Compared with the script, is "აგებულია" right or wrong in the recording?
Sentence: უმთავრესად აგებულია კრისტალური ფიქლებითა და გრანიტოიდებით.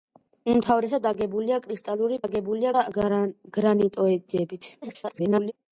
right